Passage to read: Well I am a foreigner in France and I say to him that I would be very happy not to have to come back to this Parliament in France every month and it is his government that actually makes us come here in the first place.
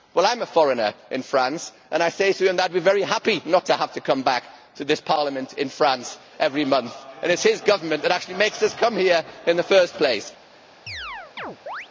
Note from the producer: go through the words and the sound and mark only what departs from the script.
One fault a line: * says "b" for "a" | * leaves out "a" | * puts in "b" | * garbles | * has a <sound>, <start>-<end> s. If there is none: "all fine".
* has a chirp, 10.9-11.9 s